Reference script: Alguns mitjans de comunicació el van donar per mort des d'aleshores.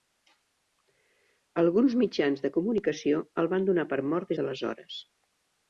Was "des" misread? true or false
true